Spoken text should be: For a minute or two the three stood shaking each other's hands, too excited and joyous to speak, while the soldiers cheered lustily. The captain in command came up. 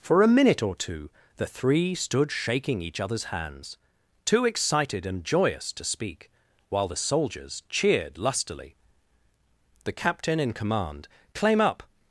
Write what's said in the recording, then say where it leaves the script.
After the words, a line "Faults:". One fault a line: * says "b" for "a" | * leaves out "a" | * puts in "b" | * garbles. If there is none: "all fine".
For a minute or two the three stood shaking each other's hands, too excited and joyous to speak, while the soldiers cheered lustily. The captain in command claim up.
Faults:
* says "claim" for "came"